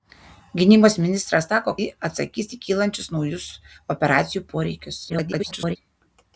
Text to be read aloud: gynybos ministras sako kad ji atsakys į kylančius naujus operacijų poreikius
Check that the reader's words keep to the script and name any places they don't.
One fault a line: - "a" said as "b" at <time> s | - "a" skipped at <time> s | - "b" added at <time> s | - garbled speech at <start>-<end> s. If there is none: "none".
- "kad" skipped at 1.7 s
- garbled speech at 5.1-5.8 s